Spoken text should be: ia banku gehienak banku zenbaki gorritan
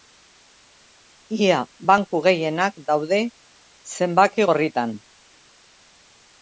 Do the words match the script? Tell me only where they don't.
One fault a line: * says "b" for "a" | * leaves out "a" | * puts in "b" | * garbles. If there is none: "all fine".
* says "daude" for "banku"